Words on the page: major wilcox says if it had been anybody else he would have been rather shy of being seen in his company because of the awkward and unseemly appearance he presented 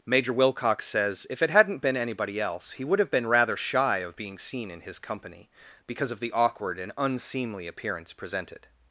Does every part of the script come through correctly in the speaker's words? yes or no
no